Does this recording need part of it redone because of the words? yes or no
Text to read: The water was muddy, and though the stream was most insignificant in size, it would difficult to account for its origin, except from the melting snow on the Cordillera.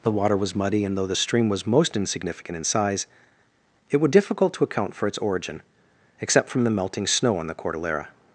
no